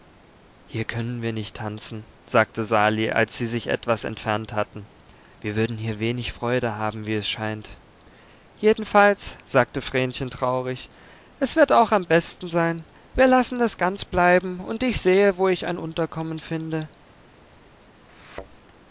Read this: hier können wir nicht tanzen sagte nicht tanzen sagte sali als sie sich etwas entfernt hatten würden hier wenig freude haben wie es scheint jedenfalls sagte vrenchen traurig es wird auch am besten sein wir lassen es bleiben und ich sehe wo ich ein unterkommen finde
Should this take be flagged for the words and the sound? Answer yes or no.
yes